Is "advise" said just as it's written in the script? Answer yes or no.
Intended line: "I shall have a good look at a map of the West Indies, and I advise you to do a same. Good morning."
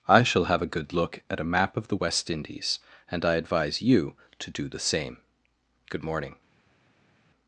yes